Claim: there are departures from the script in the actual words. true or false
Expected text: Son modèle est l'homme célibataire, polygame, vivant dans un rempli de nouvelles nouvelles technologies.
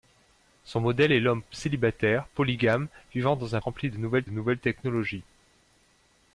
false